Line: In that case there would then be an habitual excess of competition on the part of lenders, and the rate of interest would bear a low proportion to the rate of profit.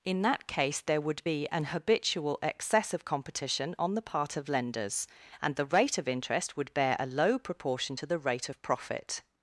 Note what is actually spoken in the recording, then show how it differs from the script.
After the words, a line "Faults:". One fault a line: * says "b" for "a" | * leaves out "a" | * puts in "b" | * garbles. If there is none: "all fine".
In that case there would be an habitual excess of competition on the part of lenders, and the rate of interest would bear a low proportion to the rate of profit.
Faults:
* leaves out "then"